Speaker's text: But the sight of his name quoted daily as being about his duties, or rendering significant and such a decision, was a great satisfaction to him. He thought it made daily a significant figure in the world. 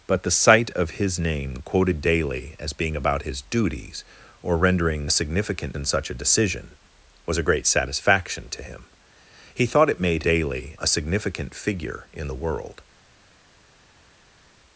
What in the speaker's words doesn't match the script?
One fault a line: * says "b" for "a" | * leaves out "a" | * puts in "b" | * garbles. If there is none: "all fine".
all fine